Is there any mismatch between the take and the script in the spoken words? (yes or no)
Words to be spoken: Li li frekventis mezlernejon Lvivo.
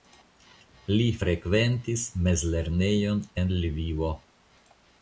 yes